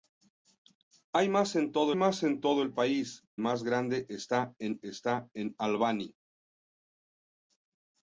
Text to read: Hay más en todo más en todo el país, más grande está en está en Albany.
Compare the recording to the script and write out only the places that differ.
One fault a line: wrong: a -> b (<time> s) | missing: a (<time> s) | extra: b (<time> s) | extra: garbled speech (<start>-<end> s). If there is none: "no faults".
no faults